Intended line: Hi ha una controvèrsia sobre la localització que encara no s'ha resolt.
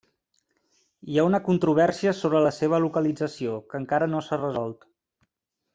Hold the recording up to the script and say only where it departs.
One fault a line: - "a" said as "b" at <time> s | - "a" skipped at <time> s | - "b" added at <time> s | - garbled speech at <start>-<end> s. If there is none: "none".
- "seva" added at 2.6 s